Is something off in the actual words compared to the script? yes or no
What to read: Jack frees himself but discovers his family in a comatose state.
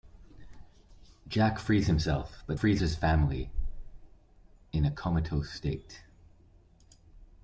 yes